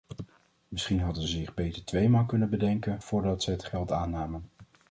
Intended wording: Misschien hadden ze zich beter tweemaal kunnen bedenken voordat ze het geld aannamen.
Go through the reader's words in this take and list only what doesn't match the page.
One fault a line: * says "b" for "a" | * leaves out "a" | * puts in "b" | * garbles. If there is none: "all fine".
all fine